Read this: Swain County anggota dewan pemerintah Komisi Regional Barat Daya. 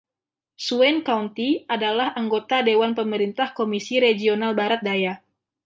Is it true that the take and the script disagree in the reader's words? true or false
true